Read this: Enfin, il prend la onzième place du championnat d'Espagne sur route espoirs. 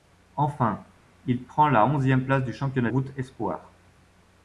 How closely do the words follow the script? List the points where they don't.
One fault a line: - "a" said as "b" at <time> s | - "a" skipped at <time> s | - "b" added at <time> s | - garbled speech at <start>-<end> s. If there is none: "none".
- "d'Espagne sur" skipped at 2.9 s